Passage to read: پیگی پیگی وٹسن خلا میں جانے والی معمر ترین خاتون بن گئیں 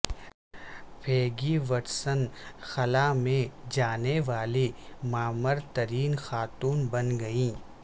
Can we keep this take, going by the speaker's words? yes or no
no